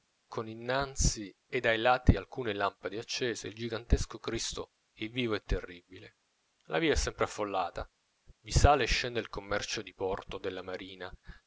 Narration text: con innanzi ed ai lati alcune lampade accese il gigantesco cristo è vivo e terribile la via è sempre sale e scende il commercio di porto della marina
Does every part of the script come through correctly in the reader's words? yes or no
no